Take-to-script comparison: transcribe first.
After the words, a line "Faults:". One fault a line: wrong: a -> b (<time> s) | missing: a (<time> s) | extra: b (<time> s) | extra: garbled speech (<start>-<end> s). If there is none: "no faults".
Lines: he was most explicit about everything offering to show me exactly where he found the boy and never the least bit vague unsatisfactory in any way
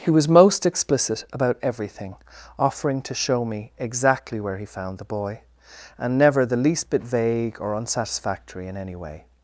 he was most explicit about everything offering to show me exactly where he found the boy and never the least bit vague or unsatisfactory in any way
Faults:
extra: or (7.6 s)